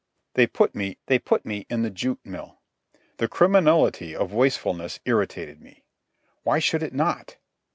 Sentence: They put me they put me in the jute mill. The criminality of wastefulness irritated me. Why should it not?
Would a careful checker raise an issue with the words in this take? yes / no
no